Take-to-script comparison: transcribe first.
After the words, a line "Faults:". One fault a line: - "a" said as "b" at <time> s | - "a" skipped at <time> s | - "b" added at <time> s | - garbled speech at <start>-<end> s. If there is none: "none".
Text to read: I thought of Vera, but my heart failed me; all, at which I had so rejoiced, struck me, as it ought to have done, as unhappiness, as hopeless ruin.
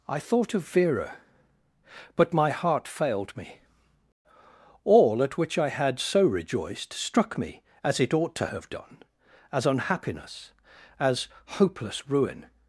I thought of Vera, but my heart failed me; all, at which I had so rejoiced, struck me, as it ought to have done, as unhappiness, as hopeless ruin.
Faults:
none